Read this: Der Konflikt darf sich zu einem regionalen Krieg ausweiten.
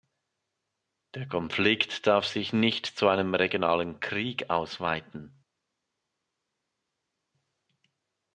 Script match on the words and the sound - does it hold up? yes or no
no